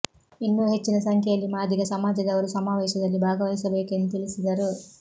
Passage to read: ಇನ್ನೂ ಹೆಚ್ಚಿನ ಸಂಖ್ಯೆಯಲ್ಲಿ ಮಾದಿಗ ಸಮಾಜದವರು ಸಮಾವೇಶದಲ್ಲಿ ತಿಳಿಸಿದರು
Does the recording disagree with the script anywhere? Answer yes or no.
yes